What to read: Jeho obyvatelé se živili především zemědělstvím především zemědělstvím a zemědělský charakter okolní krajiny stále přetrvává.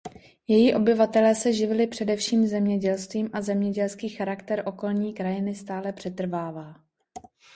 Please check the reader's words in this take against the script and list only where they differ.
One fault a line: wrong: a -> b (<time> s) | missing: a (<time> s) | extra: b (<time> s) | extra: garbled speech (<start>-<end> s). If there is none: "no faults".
wrong: Jeho -> Její (0.5 s)
missing: především zemědělstvím (3.3 s)